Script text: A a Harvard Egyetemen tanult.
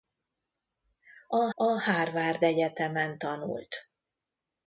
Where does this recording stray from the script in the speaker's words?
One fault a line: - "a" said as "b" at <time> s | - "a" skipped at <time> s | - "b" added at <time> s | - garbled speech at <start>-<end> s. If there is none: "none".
none